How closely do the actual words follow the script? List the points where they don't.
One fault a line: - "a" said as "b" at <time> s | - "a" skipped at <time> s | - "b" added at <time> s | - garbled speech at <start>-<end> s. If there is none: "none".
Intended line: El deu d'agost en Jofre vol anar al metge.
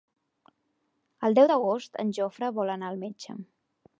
none